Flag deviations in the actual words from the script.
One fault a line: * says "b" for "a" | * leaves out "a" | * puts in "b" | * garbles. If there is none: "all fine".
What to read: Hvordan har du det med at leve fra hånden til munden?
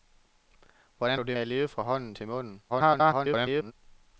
* leaves out "har"
* leaves out "med"
* garbles